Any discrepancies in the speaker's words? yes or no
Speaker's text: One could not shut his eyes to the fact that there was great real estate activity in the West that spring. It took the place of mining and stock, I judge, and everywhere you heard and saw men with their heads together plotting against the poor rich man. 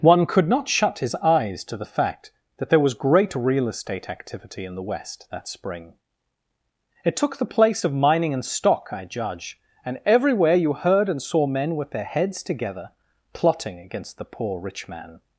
no